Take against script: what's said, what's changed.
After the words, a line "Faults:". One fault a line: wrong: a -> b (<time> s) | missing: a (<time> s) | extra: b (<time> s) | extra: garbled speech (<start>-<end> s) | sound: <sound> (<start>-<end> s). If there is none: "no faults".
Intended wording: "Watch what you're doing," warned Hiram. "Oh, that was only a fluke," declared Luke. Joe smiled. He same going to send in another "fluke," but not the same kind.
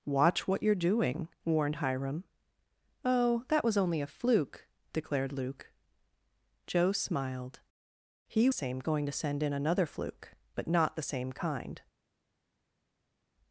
"Watch what you're doing," warned Hiram. "Oh, that was only a fluke," declared Luke. Joe smiled. He same going to send in another "fluke," but not the same kind.
Faults:
no faults